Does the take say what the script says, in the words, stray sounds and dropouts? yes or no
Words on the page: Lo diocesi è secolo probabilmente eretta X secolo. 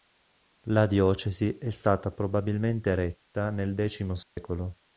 no